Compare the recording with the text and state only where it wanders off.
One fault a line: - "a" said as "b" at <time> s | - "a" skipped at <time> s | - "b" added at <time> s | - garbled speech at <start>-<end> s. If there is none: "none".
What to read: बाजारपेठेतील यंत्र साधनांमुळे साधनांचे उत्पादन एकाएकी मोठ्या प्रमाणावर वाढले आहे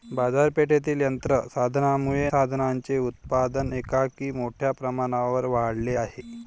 none